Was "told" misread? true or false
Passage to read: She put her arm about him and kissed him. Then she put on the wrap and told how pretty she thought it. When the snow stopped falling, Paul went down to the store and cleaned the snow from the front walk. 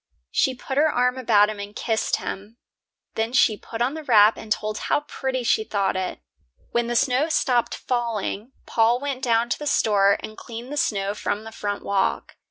false